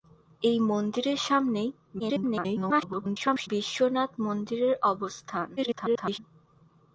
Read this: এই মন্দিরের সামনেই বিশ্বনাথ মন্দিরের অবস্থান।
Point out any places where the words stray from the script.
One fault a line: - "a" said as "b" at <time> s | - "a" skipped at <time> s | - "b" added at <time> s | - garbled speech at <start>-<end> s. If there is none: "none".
- garbled speech at 2.0-3.5 s
- garbled speech at 5.6-6.2 s